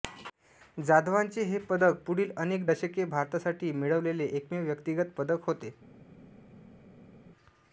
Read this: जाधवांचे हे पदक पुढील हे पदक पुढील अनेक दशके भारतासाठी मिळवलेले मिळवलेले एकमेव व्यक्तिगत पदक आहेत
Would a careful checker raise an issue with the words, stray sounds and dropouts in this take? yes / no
yes